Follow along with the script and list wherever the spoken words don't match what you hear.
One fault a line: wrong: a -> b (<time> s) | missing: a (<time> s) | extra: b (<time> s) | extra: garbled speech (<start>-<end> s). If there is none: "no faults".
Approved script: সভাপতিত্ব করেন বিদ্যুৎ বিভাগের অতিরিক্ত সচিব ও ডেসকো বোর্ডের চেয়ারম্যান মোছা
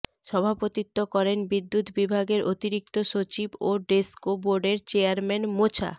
no faults